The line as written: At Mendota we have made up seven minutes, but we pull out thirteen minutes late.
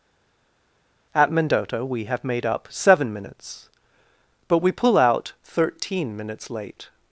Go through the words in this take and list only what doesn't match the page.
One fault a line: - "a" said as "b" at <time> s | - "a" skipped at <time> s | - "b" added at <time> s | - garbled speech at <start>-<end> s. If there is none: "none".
none